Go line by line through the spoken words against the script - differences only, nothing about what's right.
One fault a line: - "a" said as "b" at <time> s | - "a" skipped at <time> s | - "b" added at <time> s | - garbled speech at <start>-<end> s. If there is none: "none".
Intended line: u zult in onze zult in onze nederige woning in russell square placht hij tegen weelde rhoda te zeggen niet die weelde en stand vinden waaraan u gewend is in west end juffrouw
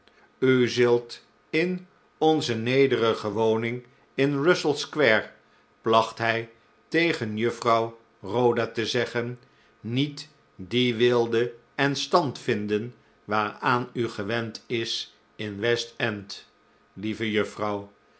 - "zult in onze" skipped at 2.5 s
- "weelde" said as "juffrouw" at 7.4 s
- "lieve" added at 16.9 s